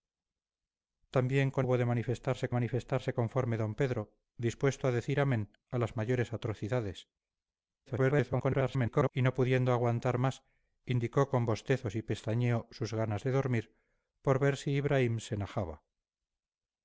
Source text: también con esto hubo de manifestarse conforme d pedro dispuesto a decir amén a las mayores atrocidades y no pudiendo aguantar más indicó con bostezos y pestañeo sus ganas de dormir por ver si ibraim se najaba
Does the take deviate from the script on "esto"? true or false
true